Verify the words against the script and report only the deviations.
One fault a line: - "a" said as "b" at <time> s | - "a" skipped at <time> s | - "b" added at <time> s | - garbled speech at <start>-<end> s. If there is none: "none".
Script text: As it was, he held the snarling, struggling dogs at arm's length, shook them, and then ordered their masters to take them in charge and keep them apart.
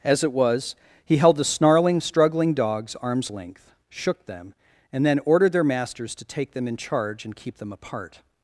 - "at" skipped at 3.0 s